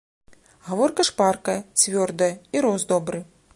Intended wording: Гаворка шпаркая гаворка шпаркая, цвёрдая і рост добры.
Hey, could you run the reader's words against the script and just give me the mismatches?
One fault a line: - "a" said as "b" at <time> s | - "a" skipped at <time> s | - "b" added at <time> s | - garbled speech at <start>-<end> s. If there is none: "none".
- "гаворка шпаркая" skipped at 1.6 s